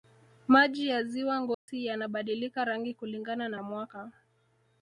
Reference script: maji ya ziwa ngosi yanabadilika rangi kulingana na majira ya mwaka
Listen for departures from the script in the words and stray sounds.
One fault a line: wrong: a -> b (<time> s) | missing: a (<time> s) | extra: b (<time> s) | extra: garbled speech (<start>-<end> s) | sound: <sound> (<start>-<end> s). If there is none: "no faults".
sound: dropout (1.5-1.7 s)
missing: majira (3.6 s)